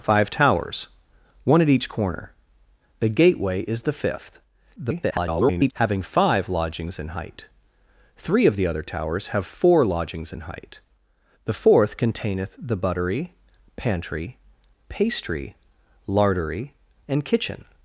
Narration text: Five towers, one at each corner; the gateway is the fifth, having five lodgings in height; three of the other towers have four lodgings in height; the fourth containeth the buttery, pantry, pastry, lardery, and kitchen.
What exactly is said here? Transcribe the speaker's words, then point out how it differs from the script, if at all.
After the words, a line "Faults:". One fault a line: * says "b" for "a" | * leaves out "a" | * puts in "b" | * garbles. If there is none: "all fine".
Five towers, one at each corner; the gateway is the fifth, [garbled] having five lodgings in height; three of the other towers have four lodgings in height; the fourth containeth the buttery, pantry, pastry, lardery, and kitchen.
Faults:
* garbles